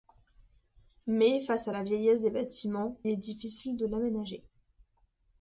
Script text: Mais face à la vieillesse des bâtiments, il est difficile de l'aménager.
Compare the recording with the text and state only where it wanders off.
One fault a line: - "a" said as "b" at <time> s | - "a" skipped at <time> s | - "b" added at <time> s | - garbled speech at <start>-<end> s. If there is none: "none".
- "il" skipped at 3.0 s